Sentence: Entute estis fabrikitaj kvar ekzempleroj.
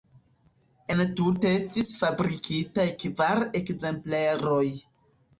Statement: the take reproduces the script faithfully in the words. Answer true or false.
true